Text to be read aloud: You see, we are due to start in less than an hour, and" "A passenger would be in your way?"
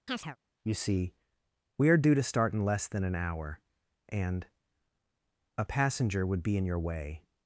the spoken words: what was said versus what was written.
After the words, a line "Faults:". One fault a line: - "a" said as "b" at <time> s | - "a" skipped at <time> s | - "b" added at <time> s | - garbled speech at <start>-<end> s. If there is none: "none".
You see, we are due to start in less than an hour, and" "A passenger would be in your way?"
Faults:
none